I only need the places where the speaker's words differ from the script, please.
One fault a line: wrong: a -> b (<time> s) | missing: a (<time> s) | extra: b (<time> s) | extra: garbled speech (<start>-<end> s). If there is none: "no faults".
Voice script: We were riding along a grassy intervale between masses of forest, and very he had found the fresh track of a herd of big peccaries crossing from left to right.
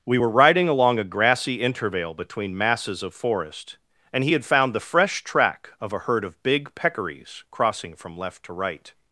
missing: very (4.2 s)